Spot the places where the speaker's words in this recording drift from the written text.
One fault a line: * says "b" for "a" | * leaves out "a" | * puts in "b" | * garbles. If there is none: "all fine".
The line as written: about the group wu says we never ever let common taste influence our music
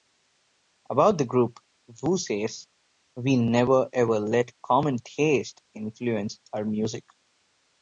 all fine